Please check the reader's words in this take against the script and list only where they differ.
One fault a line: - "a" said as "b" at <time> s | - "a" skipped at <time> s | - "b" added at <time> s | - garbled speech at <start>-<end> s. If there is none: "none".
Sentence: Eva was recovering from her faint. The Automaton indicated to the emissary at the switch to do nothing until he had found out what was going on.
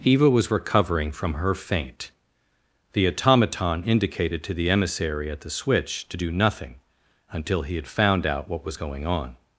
none